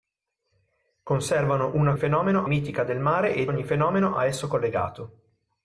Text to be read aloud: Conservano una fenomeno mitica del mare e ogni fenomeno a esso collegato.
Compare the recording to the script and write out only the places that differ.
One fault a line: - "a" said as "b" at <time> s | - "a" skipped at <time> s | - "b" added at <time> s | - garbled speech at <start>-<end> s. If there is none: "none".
none